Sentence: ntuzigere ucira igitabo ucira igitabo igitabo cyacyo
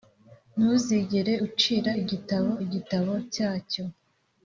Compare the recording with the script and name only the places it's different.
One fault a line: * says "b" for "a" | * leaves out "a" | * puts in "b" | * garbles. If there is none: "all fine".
* leaves out "ucira igitabo"